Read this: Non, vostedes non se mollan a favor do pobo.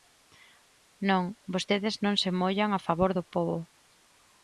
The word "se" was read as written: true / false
true